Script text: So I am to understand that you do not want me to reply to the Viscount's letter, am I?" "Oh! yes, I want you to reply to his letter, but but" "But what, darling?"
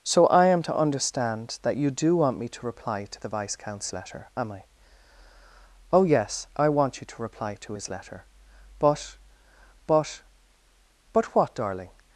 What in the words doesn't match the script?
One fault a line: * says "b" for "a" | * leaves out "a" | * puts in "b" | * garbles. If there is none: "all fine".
* leaves out "not"